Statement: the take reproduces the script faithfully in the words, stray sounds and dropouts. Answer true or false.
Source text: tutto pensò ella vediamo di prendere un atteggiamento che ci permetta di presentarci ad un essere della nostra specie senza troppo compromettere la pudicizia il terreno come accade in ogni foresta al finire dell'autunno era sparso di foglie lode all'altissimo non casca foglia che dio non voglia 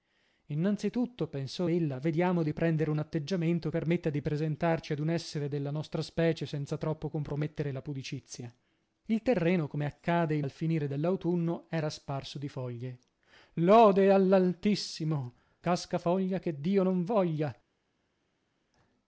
false